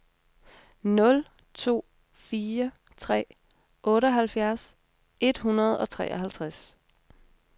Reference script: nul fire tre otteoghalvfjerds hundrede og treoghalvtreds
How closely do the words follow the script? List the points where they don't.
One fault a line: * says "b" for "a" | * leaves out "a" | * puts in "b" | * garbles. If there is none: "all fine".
* puts in "to"
* puts in "et"